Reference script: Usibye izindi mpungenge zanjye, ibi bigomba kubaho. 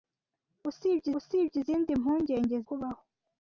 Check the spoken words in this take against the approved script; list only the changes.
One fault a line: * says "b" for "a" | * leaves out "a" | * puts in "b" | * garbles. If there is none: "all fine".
* puts in "usibye"
* leaves out "zanjye ibi bigomba"